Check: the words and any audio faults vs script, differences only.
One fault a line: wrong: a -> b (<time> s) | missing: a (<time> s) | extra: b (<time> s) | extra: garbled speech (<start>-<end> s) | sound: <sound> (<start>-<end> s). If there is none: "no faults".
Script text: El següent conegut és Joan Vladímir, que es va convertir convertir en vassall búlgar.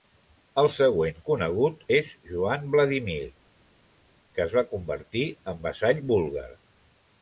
missing: convertir (5.3 s)